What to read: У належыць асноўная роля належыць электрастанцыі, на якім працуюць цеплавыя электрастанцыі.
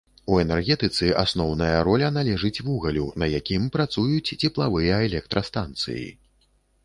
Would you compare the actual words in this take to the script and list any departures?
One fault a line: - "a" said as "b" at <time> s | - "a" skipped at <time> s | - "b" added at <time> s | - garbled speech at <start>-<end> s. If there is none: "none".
- "належыць" said as "энергетыцы" at 0.4 s
- "электрастанцыі" said as "вугалю" at 2.7 s